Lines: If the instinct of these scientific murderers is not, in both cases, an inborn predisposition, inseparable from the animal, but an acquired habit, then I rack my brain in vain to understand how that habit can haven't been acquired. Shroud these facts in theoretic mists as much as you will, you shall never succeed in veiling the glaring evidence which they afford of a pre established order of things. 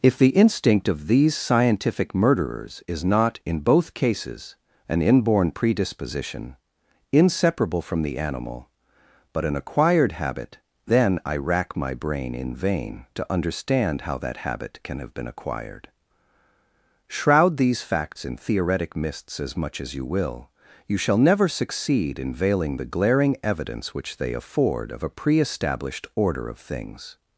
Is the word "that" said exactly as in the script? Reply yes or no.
yes